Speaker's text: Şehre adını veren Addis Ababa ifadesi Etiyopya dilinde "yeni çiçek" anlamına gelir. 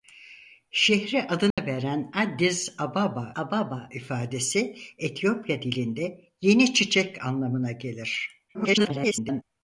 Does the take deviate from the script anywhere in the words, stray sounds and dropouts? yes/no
yes